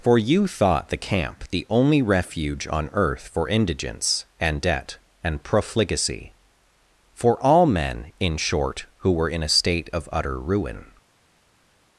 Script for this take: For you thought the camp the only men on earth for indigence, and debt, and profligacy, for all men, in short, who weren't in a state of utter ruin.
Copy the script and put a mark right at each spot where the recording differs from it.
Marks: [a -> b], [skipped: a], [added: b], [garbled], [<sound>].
For you thought the camp the only [men -> refuge] on earth for indigence, and debt, and profligacy, for all men, in short, who [weren't -> were] in a state of utter ruin.